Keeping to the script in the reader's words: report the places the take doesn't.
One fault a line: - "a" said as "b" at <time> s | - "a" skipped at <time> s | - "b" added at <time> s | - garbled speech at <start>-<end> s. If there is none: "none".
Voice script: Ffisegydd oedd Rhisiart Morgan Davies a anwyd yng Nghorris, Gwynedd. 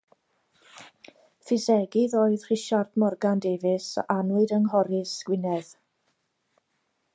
none